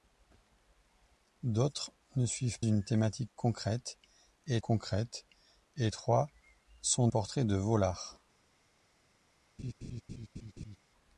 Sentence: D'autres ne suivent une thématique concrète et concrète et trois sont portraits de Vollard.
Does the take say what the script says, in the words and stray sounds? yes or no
no